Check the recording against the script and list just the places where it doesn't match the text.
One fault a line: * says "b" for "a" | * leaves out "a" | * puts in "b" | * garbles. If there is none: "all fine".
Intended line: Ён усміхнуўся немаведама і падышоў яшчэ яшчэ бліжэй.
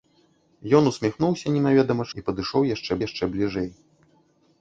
all fine